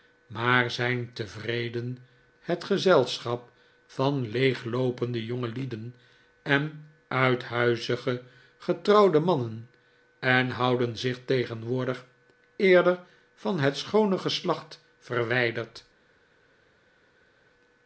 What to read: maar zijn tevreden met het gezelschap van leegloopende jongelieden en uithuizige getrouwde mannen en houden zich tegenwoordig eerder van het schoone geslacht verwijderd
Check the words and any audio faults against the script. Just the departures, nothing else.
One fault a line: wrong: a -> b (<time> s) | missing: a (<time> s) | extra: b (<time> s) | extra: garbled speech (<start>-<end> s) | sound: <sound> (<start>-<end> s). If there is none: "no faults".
missing: met (2.0 s)